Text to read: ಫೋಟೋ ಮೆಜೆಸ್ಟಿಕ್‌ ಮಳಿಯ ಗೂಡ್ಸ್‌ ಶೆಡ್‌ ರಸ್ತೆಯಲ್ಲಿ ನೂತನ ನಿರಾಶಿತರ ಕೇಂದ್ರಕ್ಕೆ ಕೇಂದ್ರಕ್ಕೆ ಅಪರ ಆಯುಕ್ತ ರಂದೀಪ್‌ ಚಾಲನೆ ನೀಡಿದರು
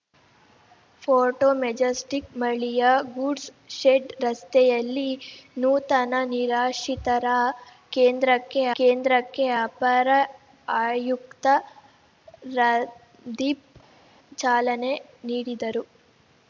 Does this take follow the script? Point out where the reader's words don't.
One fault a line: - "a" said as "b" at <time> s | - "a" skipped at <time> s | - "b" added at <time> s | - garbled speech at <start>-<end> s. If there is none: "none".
none